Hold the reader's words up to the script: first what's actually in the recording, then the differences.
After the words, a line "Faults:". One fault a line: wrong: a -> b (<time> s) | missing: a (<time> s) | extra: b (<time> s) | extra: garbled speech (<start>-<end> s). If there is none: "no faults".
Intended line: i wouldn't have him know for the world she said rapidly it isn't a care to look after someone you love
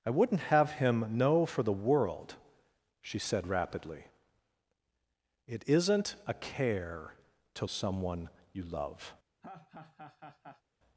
i wouldn't have him know for the world she said rapidly it isn't a care to someone you love
Faults:
missing: look after (7.7 s)